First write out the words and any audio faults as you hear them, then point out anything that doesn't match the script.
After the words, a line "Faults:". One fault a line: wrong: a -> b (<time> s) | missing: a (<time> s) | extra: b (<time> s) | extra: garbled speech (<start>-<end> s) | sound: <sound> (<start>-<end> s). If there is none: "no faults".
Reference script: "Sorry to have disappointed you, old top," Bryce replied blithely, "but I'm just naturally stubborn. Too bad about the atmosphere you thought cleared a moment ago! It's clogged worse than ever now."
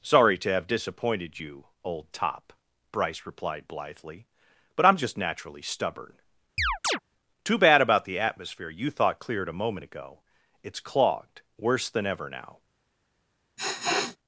"Sorry to have disappointed you, old top," Bryce replied blithely, "but I'm just naturally stubborn. Too bad about the atmosphere you thought cleared a moment ago! It's clogged worse than ever now."
Faults:
sound: chirp (6.6-7.0 s)
sound: sniff (13.6-14.2 s)